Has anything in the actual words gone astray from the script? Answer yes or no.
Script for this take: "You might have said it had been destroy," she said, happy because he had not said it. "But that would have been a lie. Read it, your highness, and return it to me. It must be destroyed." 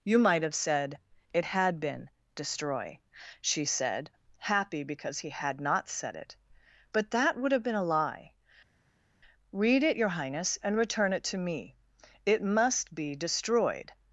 no